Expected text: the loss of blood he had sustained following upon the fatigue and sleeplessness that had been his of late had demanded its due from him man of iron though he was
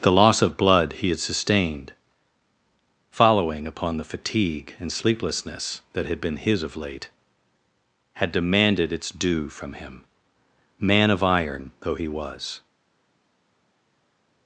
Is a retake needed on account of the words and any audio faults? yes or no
no